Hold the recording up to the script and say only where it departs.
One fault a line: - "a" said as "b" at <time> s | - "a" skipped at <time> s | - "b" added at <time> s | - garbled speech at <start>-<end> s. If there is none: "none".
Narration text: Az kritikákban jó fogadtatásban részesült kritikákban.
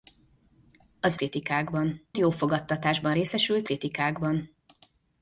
none